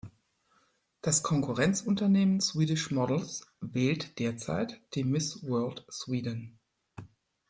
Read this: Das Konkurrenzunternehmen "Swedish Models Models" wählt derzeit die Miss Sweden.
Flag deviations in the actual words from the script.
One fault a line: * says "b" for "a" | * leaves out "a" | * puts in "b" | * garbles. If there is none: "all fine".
* leaves out "Models"
* puts in "World"